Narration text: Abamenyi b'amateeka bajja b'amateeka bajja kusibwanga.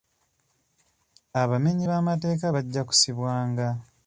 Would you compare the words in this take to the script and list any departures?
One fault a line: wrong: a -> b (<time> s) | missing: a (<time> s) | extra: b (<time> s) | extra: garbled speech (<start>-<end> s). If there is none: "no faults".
missing: b'amateeka bajja (2.8 s)